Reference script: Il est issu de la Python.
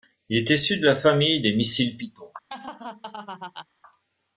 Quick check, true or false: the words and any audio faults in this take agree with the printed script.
false